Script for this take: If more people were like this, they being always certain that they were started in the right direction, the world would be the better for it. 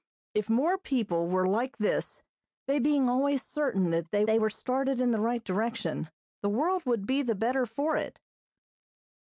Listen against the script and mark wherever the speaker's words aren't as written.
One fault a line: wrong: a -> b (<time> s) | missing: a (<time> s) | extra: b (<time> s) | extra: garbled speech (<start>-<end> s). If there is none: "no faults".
extra: they (4.2 s)